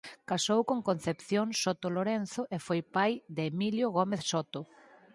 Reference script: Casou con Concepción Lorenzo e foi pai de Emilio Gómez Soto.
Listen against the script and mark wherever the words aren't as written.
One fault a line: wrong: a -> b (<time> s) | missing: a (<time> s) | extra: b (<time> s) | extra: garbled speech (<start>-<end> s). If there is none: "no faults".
extra: Soto (1.6 s)